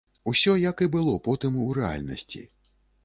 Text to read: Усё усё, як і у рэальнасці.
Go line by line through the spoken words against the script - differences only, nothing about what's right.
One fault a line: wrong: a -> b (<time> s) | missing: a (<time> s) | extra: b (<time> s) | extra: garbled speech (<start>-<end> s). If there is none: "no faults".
missing: усё (0.5 s)
extra: было потым (0.9 s)